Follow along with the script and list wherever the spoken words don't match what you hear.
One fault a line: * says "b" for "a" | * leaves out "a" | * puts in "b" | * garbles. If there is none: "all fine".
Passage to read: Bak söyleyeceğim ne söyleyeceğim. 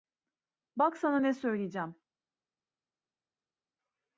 * says "sana" for "söyleyeceğim"